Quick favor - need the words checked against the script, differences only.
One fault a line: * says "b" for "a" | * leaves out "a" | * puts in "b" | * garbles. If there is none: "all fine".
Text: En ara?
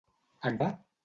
all fine